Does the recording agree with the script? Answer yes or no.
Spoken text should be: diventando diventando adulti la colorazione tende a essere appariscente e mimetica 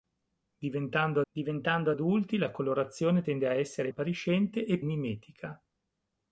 yes